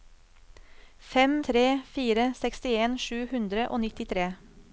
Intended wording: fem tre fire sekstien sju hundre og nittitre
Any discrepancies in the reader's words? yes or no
no